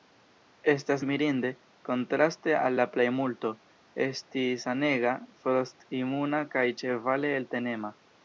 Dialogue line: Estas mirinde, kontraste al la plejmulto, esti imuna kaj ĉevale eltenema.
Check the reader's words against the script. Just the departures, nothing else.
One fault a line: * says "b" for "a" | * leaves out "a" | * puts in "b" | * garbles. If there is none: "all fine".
* puts in "sanega frost"